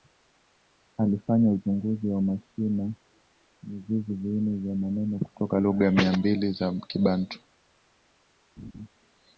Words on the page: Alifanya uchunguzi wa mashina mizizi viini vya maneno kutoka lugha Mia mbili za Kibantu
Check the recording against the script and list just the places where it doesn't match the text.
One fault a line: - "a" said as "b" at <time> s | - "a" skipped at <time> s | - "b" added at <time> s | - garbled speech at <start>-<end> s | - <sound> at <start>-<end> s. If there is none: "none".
- laugh at 8.6-8.9 s